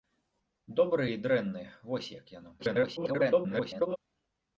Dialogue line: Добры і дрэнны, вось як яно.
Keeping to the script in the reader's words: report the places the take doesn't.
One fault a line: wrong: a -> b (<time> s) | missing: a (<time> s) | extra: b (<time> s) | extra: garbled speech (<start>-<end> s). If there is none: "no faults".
extra: garbled speech (2.6-4.0 s)